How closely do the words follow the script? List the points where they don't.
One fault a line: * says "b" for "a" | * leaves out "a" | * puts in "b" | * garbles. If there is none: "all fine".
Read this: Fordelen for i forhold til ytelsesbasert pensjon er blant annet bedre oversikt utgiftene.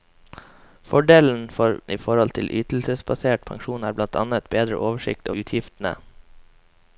all fine